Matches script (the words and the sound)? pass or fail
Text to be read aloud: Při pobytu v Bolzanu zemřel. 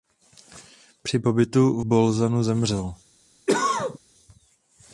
fail